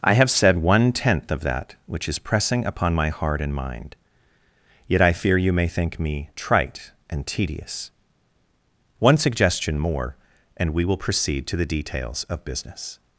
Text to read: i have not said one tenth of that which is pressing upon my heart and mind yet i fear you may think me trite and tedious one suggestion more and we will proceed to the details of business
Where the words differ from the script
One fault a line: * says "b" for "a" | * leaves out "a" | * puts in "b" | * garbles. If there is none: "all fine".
* leaves out "not"